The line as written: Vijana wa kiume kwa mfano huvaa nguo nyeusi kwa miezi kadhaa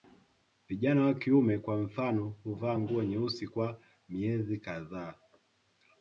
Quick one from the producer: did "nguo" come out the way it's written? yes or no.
yes